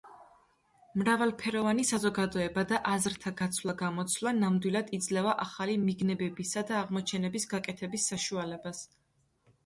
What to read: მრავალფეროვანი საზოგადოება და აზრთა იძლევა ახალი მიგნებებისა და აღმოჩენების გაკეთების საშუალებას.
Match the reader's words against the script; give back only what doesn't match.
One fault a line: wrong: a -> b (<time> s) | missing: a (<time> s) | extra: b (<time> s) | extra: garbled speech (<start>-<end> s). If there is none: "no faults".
extra: გაცვლა გამოცვლა ნამდვილად (3.4 s)